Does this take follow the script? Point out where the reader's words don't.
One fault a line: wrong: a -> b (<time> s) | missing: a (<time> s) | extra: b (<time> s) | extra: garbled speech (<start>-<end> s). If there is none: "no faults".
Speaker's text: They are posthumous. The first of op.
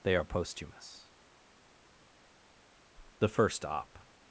missing: of (3.6 s)